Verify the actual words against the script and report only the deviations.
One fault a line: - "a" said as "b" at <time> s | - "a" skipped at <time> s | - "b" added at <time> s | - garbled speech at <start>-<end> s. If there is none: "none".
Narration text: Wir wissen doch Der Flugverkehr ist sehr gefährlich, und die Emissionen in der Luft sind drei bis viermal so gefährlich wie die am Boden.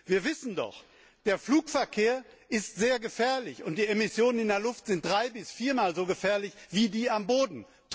none